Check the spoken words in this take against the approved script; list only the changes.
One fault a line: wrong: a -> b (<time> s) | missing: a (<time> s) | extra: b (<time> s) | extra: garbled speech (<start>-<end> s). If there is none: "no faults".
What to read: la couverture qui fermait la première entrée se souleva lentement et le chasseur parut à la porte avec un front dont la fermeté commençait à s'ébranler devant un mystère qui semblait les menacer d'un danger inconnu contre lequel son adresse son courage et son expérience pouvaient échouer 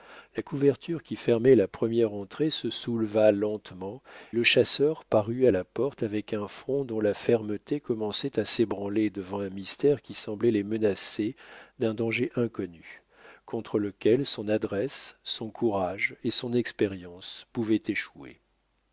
missing: et (4.0 s)